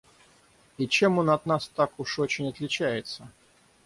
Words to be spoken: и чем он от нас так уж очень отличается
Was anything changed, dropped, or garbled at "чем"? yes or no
no